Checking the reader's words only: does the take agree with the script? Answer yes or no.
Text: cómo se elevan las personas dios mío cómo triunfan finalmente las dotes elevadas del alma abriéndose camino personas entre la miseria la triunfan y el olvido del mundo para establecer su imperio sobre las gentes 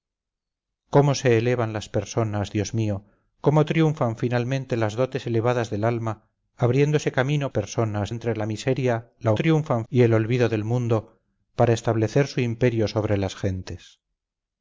yes